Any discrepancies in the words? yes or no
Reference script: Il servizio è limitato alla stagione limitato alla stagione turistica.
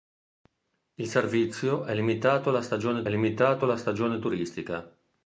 no